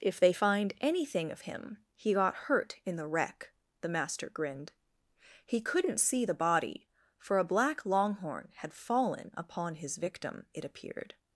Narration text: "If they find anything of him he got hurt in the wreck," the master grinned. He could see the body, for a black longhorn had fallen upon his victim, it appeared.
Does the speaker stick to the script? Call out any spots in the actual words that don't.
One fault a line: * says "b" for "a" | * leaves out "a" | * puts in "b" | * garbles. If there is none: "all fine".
* says "couldn't" for "could"